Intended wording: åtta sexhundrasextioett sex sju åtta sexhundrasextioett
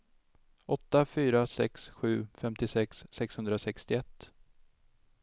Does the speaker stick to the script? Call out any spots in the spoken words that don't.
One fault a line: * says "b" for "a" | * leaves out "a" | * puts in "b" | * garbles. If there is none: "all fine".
* says "fyra" for "sexhundrasextioett"
* says "femtiosex" for "åtta"